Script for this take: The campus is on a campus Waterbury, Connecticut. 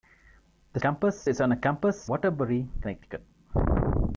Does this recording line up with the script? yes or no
yes